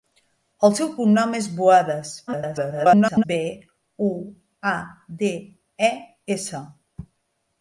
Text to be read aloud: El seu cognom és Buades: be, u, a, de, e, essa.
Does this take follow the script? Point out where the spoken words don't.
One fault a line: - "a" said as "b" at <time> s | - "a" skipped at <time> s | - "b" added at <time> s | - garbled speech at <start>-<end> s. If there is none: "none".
- garbled speech at 2.3-3.2 s